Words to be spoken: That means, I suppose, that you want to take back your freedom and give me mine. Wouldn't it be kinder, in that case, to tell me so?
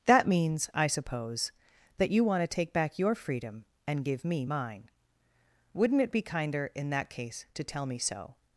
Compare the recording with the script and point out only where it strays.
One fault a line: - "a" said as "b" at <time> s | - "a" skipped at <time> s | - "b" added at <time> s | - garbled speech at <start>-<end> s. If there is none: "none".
none